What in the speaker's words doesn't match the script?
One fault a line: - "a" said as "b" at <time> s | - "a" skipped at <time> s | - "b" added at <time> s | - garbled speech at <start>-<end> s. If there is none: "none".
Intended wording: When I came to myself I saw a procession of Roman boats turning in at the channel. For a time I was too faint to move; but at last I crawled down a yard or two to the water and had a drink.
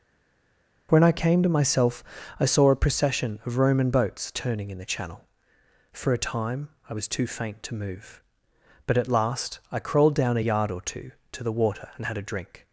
- "at" skipped at 4.8 s